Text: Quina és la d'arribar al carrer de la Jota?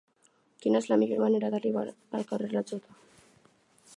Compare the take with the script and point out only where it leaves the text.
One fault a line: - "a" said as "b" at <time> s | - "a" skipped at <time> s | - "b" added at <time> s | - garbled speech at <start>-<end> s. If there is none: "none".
- "millor manera" added at 1.0 s